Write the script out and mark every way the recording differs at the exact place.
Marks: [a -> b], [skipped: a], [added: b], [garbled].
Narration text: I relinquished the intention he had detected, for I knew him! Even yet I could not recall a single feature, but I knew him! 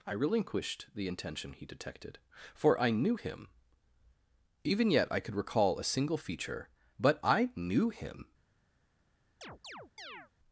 I relinquished the intention he [skipped: had] detected, for I knew him! Even yet I could [skipped: not] recall a single feature, but I knew him!